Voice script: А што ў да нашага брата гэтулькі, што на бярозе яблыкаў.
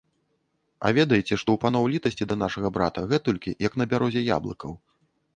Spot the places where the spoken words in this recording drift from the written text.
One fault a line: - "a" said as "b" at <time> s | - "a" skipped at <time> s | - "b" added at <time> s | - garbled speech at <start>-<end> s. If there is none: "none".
- "ведаеце" added at 1.0 s
- "паноў літасці" added at 1.6 s
- "што" said as "як" at 3.7 s